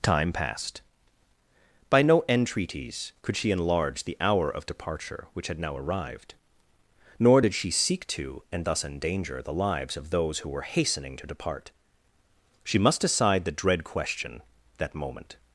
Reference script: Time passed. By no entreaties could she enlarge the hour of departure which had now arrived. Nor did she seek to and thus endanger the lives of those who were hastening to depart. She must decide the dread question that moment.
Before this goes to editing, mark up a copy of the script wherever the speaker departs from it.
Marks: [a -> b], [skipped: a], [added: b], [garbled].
Time passed. By no entreaties could she enlarge the hour of departure which had now arrived. Nor did she seek to and thus endanger the lives of those who were hastening to depart. She must decide the dread question that moment.